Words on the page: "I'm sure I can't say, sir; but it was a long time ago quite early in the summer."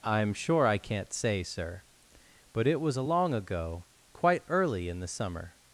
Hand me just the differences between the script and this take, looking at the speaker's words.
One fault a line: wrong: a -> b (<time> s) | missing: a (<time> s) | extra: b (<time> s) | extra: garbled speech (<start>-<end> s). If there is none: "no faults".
missing: time (3.3 s)